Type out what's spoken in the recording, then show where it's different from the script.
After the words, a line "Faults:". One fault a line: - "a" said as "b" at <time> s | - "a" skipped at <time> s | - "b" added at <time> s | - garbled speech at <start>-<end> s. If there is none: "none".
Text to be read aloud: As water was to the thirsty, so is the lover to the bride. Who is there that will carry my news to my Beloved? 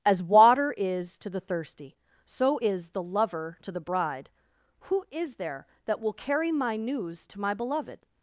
As water is to the thirsty, so is the lover to the bride. Who is there that will carry my news to my Beloved?
Faults:
- "was" said as "is" at 0.8 s